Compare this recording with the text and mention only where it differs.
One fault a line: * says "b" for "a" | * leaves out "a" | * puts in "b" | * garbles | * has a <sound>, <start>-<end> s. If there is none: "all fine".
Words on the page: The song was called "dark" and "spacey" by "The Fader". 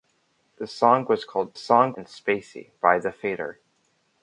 * says "song" for "dark"